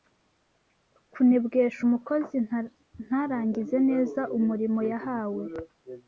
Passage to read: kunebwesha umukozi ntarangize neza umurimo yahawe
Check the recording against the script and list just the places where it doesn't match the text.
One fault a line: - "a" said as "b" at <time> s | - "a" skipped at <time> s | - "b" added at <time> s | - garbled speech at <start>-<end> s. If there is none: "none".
none